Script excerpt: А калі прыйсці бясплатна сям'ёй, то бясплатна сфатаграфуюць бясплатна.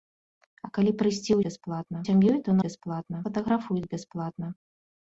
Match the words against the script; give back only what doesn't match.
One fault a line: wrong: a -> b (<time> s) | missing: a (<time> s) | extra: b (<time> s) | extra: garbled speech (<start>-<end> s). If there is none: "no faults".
no faults